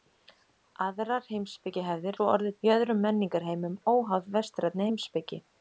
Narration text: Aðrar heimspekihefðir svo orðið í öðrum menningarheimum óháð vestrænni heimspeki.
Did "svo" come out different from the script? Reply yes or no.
no